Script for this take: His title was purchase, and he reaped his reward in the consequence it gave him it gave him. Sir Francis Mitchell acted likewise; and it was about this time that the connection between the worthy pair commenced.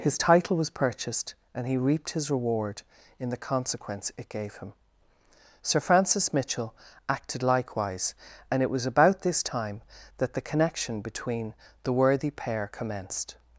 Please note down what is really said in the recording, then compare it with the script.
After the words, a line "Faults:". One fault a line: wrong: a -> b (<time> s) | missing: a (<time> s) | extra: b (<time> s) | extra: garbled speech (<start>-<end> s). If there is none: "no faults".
His title was purchased, and he reaped his reward in the consequence it gave him. Sir Francis Mitchell acted likewise; and it was about this time that the connection between the worthy pair commenced.
Faults:
wrong: purchase -> purchased (0.7 s)
missing: it gave him (4.7 s)